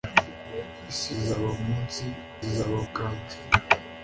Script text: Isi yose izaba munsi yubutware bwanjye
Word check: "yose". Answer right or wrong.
wrong